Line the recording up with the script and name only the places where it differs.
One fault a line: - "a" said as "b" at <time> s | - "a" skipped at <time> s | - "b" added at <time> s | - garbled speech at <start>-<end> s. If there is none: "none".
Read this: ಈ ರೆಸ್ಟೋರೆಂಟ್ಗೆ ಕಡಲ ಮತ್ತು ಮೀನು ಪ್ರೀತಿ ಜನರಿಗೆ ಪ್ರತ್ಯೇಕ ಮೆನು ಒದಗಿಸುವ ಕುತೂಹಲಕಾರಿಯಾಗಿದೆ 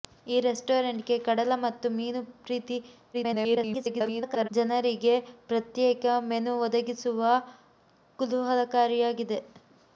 - garbled speech at 3.1-4.5 s